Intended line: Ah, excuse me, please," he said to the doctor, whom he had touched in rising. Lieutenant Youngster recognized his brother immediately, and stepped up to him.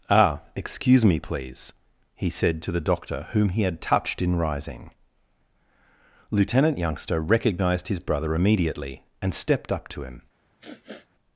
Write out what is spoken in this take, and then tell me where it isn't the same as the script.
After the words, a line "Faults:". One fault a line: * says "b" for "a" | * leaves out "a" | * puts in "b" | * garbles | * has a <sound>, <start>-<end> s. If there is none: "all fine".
Ah, excuse me, please," he said to the doctor, whom he had touched in rising. Lieutenant Youngster recognized his brother immediately, and stepped up to him.
Faults:
* has a sniff, 10.6-11.1 s